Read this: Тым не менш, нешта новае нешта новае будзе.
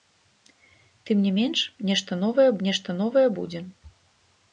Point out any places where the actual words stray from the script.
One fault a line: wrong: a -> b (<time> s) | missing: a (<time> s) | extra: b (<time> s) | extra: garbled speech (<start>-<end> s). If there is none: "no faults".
no faults